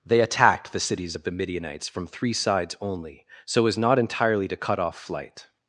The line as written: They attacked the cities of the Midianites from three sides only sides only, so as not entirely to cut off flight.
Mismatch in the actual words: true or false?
true